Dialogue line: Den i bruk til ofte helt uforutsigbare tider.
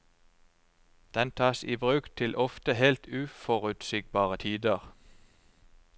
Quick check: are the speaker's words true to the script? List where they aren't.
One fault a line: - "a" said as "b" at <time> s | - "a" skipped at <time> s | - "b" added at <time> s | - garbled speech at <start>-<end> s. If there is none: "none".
- "tas" added at 1.3 s